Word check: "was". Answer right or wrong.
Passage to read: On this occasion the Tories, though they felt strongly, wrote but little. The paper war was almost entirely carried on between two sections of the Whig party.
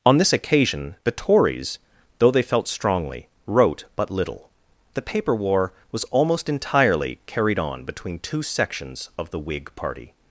right